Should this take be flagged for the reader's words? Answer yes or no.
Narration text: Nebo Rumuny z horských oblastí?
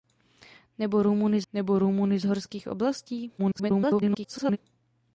yes